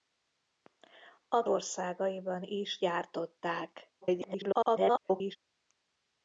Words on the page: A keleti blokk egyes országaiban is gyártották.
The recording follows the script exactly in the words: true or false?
false